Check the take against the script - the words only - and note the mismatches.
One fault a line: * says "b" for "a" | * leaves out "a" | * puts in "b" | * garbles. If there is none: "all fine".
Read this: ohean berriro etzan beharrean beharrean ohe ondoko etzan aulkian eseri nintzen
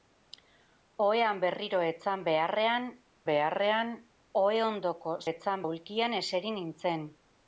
all fine